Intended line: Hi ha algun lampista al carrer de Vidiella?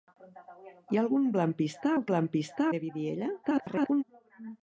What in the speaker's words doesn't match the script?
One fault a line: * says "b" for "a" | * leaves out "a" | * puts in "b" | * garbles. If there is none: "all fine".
* says "lampista" for "carrer"
* garbles